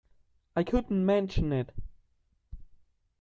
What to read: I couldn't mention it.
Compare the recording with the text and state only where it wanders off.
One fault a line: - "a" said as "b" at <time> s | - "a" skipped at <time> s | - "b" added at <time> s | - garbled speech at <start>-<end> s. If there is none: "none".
none